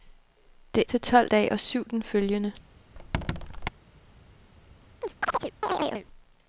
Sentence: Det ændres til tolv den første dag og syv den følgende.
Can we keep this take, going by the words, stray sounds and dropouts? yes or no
no